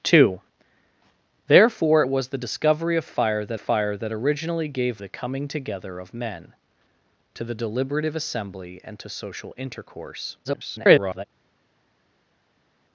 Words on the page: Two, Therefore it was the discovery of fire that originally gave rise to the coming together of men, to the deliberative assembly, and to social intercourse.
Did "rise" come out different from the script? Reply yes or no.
yes